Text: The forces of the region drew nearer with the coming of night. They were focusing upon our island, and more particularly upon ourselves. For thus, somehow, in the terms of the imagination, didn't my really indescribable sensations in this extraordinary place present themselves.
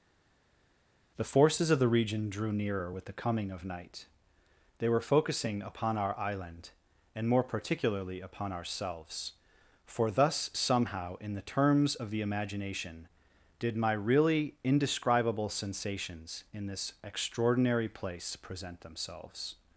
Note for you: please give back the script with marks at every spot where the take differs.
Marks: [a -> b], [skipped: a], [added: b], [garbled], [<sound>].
The forces of the region drew nearer with the coming of night. They were focusing upon our island, and more particularly upon ourselves. For thus, somehow, in the terms of the imagination, [didn't -> did] my really indescribable sensations in this extraordinary place present themselves.